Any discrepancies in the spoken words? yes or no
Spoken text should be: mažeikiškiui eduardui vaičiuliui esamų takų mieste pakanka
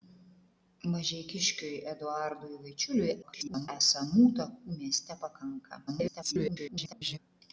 yes